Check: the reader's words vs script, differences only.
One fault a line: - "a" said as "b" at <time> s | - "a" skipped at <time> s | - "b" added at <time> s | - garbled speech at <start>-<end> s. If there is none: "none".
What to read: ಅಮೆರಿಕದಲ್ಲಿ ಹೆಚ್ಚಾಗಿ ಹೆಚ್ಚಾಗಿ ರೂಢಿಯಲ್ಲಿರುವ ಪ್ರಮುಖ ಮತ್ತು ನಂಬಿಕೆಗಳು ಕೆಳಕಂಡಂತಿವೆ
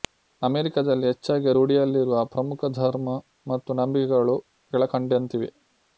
- "ಹೆಚ್ಚಾಗಿ" skipped at 1.5 s
- "ಧರ್ಮ" added at 2.8 s